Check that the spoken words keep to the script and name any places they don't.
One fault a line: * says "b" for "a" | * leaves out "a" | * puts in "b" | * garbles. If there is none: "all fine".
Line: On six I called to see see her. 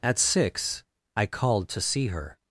* says "At" for "On"
* leaves out "see"